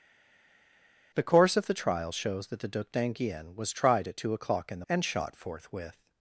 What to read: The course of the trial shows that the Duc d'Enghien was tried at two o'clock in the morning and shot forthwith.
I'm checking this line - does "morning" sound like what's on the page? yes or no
no